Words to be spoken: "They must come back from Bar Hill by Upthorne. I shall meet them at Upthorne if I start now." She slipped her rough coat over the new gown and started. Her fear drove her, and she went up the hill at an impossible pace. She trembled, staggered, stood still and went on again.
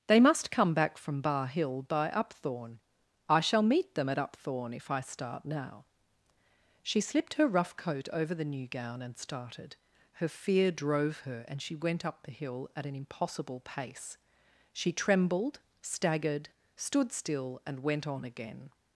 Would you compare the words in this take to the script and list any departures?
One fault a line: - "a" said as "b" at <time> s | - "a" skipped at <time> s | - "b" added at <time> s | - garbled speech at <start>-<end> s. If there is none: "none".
none